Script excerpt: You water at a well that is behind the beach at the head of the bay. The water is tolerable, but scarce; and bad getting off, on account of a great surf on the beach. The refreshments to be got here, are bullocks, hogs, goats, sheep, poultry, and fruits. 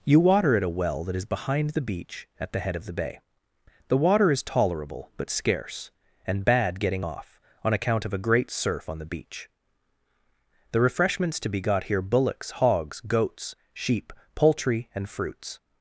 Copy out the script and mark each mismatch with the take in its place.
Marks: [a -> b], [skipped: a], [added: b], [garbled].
You water at a well that is behind the beach at the head of the bay. The water is tolerable, but scarce; and bad getting off, on account of a great surf on the beach. The refreshments to be got here, [skipped: are] bullocks, hogs, goats, sheep, poultry, and fruits.